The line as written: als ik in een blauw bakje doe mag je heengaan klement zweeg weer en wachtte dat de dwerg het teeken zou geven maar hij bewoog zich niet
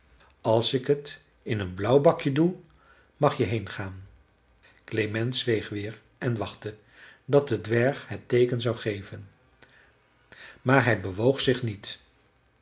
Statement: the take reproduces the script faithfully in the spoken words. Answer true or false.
false